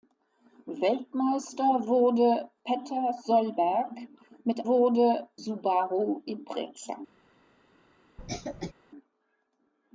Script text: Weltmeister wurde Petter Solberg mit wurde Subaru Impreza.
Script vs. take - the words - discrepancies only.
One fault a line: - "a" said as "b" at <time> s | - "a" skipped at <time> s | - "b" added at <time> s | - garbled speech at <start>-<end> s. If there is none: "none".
none